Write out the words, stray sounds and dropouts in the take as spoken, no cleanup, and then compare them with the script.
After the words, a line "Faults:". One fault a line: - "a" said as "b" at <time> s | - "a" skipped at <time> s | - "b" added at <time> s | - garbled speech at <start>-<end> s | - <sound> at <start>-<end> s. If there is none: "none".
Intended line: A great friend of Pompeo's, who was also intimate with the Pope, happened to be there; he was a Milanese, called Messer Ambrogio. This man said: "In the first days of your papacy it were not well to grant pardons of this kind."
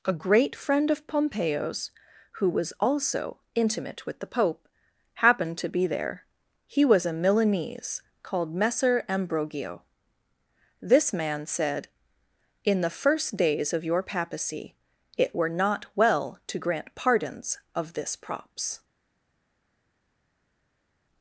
A great friend of Pompeo's, who was also intimate with the Pope, happened to be there; he was a Milanese, called Messer Ambrogio. This man said: "In the first days of your papacy it were not well to grant pardons of this props."
Faults:
- "kind" said as "props" at 18.1 s